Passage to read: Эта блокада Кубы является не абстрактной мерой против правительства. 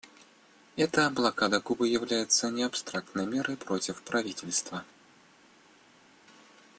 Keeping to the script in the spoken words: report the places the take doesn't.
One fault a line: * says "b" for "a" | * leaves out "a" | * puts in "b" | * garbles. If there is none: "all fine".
all fine